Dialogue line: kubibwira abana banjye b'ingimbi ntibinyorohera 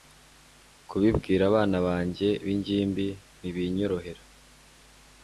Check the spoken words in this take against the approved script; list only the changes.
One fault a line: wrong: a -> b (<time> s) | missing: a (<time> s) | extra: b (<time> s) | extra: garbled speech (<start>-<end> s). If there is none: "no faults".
no faults